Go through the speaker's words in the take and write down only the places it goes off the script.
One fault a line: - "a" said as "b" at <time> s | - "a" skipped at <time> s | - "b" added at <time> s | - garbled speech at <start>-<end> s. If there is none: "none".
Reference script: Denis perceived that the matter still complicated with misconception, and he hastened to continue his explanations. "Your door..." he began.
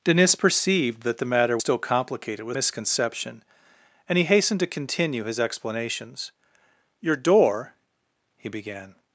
none